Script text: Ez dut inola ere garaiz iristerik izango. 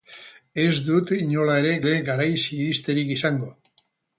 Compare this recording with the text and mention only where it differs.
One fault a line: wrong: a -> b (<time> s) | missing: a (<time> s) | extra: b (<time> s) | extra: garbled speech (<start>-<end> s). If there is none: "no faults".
extra: ere (1.9 s)